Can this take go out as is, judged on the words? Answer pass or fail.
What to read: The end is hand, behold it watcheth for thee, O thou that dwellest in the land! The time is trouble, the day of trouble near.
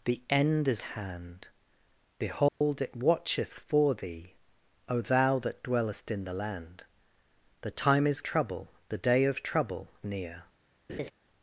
pass